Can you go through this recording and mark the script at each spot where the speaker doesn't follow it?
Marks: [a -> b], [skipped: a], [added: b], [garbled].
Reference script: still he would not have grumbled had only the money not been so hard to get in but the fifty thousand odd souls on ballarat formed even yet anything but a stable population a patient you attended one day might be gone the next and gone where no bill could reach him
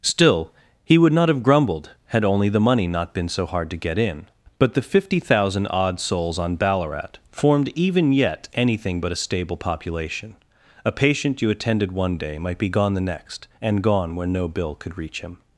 still he would not have grumbled had only the money not been so hard to get in but the fifty thousand odd souls on ballarat formed even yet anything but a stable population a patient you attended one day might be gone the next and gone where no bill could reach him